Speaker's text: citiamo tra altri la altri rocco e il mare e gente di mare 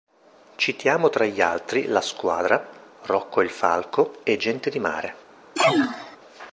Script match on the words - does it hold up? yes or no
no